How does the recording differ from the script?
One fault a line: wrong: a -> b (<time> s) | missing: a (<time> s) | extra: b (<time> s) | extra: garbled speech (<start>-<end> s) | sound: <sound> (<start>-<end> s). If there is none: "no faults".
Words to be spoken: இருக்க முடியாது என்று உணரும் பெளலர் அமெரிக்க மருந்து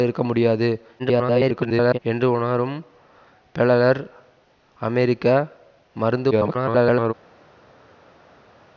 extra: garbled speech (1.0-2.0 s)
extra: garbled speech (6.3-7.1 s)